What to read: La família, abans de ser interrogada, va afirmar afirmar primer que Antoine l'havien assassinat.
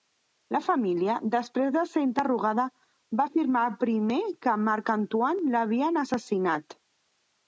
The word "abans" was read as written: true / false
false